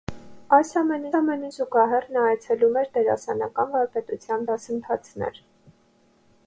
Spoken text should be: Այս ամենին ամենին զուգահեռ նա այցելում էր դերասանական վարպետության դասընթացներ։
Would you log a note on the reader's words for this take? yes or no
no